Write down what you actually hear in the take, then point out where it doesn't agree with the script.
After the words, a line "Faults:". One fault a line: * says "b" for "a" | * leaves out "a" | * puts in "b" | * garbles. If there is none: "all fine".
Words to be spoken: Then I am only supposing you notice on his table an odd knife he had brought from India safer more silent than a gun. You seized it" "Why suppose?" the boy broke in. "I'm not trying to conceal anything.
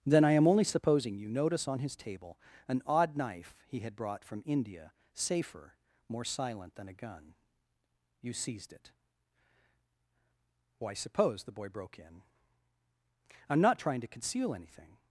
Then I am only supposing you notice on his table an odd knife he had brought from India safer more silent than a gun. You seized it" "Why suppose?" the boy broke in. "I'm not trying to conceal anything.
Faults:
all fine